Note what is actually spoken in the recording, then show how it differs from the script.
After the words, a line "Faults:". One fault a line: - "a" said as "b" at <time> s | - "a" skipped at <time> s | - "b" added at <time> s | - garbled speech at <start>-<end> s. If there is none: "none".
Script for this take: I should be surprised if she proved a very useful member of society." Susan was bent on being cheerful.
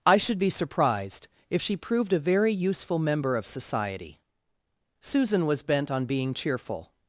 I should be surprised if she proved a very useful member of society." Susan was bent on being cheerful.
Faults:
none